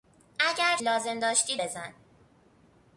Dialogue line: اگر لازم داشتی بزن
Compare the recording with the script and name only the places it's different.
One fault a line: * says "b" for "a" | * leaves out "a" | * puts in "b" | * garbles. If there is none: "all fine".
all fine